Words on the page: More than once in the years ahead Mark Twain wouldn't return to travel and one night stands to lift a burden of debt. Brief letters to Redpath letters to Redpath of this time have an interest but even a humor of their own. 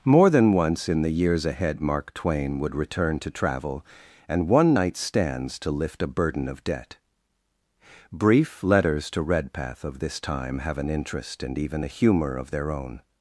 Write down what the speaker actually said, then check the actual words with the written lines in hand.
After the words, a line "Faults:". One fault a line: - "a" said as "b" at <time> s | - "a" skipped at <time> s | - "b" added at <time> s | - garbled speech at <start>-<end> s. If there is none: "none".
More than once in the years ahead Mark Twain would return to travel and one night stands to lift a burden of debt. Brief letters to Redpath of this time have an interest and even a humor of their own.
Faults:
- "wouldn't" said as "would" at 2.6 s
- "letters to Redpath" skipped at 9.8 s
- "but" said as "and" at 11.4 s